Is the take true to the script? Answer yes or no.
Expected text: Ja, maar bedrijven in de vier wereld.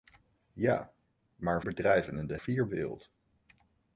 yes